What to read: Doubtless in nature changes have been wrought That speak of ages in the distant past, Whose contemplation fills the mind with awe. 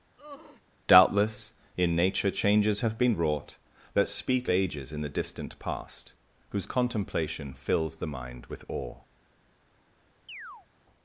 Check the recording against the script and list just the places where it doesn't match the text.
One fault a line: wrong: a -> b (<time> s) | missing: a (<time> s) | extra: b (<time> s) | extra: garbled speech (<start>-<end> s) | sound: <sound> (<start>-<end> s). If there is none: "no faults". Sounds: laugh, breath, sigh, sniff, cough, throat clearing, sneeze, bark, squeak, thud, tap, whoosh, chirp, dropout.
sound: sigh (0.2-0.6 s)
missing: of (4.5 s)
sound: chirp (10.3-10.7 s)